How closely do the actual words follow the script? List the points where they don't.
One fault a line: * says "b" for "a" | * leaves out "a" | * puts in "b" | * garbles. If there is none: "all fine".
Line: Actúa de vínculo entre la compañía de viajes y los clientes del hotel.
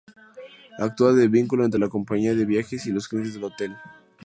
all fine